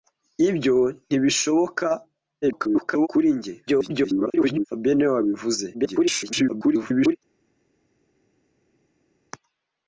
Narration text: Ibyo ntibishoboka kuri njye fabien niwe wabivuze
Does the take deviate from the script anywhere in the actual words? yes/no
yes